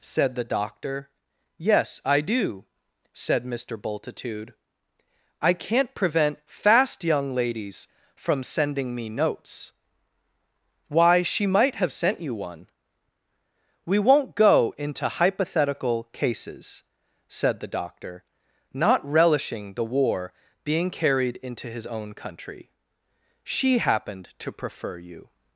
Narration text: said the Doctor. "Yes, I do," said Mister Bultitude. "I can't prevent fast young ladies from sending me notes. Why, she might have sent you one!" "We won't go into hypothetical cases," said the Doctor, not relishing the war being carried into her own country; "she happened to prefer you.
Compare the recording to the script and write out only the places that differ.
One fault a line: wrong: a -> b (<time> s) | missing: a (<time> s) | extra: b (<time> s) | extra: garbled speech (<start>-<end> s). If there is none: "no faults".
wrong: her -> his (21.7 s)